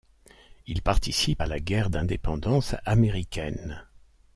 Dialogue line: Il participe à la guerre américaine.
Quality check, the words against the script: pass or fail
fail